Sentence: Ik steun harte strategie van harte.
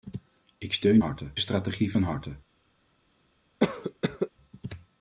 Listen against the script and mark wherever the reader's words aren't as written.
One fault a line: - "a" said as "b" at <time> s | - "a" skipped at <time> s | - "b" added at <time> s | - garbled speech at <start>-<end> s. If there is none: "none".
none